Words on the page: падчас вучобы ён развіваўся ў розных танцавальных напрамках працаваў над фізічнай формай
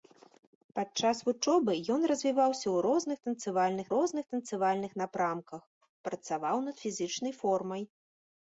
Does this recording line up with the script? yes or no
no